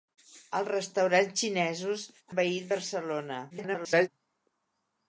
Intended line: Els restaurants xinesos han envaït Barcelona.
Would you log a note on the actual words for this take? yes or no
yes